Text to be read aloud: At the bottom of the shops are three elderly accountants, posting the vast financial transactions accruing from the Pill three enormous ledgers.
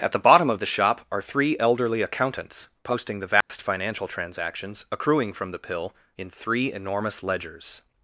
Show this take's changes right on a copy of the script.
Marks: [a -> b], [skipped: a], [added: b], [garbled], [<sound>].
At the bottom of the [shops -> shop] are three elderly accountants, posting the vast [dropout] financial transactions accruing from the Pill [added: in] three enormous ledgers.